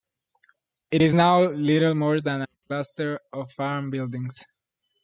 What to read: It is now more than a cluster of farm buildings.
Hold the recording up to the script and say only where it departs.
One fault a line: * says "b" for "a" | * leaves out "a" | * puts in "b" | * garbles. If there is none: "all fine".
* puts in "little"